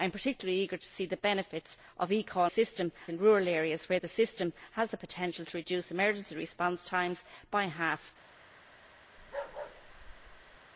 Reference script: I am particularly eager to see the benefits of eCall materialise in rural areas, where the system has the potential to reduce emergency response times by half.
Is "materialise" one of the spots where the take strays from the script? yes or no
yes